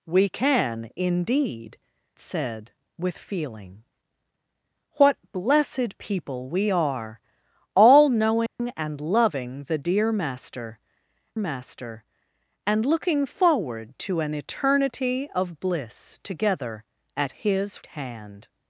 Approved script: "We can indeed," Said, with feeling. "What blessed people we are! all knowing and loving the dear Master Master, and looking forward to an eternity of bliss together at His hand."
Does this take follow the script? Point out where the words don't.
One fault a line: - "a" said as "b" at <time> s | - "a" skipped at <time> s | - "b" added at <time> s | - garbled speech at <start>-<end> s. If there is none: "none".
none